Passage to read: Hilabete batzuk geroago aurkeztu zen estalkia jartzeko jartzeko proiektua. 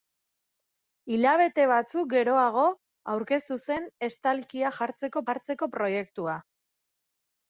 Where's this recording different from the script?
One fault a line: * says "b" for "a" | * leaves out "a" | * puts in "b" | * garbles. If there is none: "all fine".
all fine